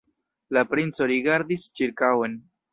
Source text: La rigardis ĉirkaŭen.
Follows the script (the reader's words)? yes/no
no